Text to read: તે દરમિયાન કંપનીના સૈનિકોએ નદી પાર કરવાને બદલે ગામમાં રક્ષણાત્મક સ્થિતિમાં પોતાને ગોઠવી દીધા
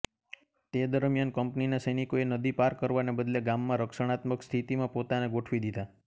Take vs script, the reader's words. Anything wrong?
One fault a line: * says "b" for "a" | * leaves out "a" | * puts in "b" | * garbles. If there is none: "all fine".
all fine